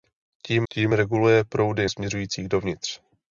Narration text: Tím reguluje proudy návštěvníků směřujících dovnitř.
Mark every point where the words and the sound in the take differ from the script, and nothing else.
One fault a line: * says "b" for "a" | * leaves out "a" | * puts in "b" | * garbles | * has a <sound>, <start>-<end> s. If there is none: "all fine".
* puts in "tím"
* leaves out "návštěvníků"